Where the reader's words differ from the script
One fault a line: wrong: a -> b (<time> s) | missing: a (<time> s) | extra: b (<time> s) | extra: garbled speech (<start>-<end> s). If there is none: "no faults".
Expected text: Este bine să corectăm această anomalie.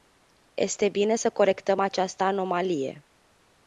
no faults